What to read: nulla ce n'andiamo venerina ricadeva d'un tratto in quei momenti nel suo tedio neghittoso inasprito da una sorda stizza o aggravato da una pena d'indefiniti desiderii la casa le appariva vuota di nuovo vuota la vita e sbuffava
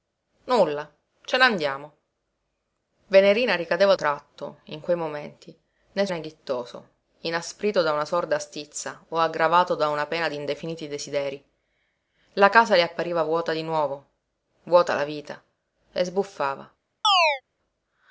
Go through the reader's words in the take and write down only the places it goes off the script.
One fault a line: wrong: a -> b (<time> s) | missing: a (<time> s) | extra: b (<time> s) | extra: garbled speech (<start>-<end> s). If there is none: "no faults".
missing: d'un (3.9 s)
missing: suo tedio (6.1 s)